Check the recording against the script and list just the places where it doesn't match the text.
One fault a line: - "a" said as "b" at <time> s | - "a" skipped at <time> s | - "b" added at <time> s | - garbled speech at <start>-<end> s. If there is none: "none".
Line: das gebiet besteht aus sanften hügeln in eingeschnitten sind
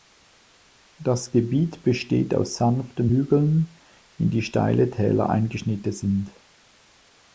- "die steile täler" added at 4.3 s